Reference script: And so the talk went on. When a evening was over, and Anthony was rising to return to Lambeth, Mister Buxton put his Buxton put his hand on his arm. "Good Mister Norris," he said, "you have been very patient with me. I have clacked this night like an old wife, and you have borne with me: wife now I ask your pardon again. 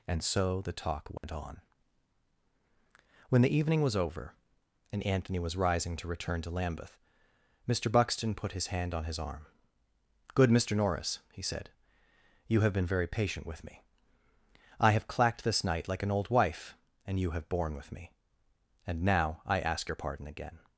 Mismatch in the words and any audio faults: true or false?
true